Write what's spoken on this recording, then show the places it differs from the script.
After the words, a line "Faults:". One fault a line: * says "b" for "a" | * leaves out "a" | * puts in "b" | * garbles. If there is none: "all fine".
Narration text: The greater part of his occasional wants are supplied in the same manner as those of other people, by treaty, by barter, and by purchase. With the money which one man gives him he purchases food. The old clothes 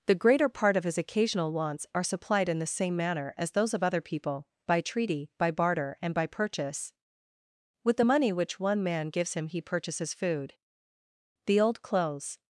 The greater part of his occasional wants are supplied in the same manner as those of other people, by treaty, by barter, and by purchase. With the money which one man gives him he purchases food. The old clothes
Faults:
all fine